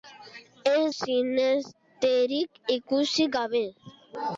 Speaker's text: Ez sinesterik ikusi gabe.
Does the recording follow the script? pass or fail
pass